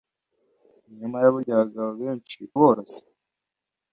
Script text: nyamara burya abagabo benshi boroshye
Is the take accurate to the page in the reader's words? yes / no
yes